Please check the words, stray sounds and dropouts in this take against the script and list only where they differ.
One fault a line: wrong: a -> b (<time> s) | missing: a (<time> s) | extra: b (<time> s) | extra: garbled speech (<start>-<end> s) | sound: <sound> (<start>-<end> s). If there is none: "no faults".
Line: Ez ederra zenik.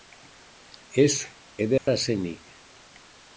sound: dropout (1.8-1.9 s)